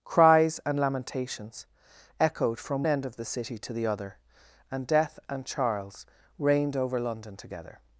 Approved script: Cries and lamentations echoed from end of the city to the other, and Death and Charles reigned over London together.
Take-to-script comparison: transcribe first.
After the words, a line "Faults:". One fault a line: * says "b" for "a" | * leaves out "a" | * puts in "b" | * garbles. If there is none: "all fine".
Cries and lamentations echoed from end of the city to the other, and Death and Charles reigned over London together.
Faults:
all fine